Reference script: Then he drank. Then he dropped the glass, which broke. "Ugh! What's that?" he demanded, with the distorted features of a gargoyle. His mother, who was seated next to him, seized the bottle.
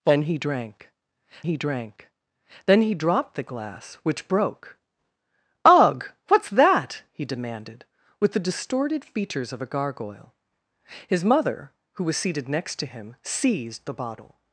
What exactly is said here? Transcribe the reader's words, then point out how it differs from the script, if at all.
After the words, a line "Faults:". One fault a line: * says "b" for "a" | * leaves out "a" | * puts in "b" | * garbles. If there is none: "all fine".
Then he drank he drank. Then he dropped the glass, which broke. "Ugh! What's that?" he demanded, with the distorted features of a gargoyle. His mother, who was seated next to him, seized the bottle.
Faults:
* puts in "he drank"